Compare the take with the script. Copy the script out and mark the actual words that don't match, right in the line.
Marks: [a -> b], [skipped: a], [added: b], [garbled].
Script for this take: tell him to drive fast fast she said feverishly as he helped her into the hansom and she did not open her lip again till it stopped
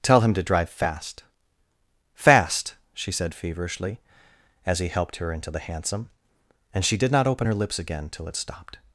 tell him to drive fast fast she said feverishly as he helped her into the hansom and she did not open her [lip -> lips] again till it stopped